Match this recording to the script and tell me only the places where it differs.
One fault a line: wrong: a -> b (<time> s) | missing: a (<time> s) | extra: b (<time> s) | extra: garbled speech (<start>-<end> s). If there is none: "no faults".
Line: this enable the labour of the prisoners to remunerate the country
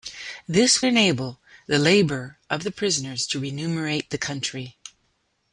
no faults